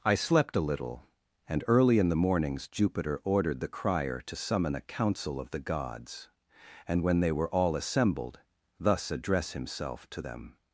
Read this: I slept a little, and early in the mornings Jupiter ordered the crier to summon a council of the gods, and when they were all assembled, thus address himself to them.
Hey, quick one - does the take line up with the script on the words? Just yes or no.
yes